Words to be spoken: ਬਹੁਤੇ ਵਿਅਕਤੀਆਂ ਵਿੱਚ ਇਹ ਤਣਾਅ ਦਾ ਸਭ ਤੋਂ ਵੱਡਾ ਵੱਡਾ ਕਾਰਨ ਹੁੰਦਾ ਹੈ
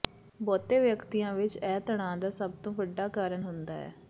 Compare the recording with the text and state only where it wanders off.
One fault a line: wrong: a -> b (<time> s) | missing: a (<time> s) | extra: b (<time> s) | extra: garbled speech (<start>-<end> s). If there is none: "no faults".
missing: ਵੱਡਾ (3.1 s)